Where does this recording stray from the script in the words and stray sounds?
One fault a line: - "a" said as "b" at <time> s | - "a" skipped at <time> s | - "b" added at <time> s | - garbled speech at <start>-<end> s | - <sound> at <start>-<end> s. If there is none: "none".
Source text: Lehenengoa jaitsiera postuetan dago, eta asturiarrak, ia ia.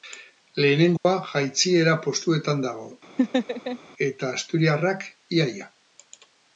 - dropout at 1.0-1.1 s
- laugh at 3.2-3.8 s